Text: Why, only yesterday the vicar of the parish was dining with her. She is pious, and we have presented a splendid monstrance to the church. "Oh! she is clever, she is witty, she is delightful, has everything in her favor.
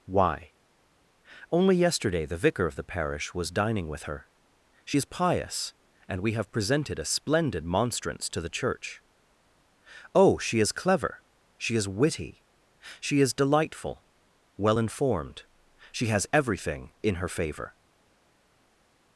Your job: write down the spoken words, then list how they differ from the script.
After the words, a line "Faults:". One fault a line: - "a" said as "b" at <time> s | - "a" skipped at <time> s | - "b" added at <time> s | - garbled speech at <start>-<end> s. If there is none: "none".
Why, only yesterday the vicar of the parish was dining with her. She is pious, and we have presented a splendid monstrance to the church. "Oh! she is clever, she is witty, she is delightful, well informed she has everything in her favor.
Faults:
- "well informed she" added at 14.6 s